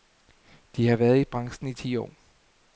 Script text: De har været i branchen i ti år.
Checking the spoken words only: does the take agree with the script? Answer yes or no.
yes